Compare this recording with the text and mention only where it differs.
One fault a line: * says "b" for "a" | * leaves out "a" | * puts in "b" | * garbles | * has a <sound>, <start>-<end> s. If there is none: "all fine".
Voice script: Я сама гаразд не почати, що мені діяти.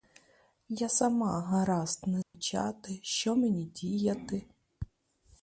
* has a dropout, 2.2-2.3 s